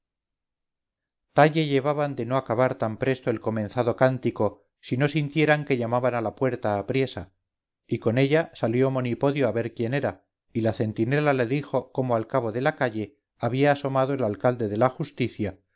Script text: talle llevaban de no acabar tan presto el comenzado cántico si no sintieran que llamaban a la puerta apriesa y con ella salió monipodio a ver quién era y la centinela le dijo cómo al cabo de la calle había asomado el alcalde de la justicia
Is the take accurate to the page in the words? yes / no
yes